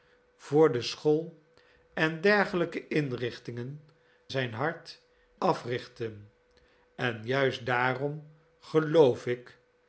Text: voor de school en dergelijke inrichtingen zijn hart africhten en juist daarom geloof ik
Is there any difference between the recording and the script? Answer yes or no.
no